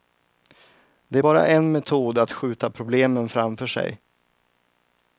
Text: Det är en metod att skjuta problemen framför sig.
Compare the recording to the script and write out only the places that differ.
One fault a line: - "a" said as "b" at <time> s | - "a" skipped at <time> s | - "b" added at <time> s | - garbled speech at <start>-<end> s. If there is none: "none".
- "bara" added at 1.2 s